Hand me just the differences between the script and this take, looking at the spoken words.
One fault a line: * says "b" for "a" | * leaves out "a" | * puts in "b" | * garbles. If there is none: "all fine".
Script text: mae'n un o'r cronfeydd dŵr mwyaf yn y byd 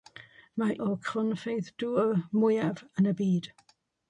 * leaves out "un"